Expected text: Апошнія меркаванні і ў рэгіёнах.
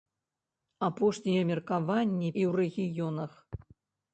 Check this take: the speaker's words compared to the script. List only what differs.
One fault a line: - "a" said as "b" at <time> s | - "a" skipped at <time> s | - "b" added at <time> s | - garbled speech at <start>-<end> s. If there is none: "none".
none